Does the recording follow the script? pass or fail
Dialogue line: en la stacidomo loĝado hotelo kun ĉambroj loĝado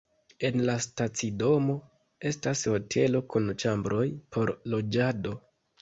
fail